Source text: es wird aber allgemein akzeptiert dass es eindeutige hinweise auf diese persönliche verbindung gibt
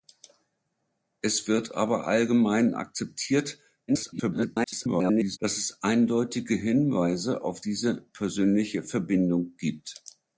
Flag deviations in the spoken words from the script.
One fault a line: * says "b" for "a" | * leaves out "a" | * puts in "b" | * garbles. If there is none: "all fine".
* garbles